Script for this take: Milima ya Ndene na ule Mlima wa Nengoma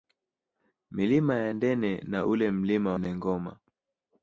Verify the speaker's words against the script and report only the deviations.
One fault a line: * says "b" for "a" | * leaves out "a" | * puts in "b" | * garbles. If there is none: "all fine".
* leaves out "wa"